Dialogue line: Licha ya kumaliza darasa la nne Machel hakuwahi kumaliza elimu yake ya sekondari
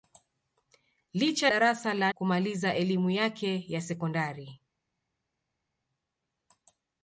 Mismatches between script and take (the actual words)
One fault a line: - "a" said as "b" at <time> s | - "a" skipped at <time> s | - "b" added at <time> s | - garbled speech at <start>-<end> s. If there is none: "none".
- "ya kumaliza" skipped at 1.5 s
- "nne Machel hakuwahi" skipped at 2.1 s